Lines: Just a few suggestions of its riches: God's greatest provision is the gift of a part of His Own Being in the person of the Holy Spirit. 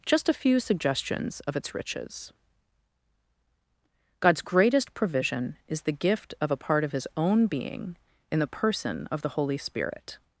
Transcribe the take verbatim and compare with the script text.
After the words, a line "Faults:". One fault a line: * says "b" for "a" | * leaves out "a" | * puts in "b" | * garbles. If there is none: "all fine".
Just a few suggestions of its riches: God's greatest provision is the gift of a part of His Own Being in the person of the Holy Spirit.
Faults:
all fine